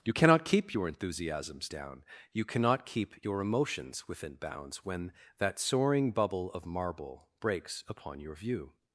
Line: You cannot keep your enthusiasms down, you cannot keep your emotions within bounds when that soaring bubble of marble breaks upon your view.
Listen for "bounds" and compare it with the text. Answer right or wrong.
right